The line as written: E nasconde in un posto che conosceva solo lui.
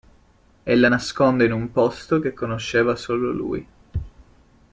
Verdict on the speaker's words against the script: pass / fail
fail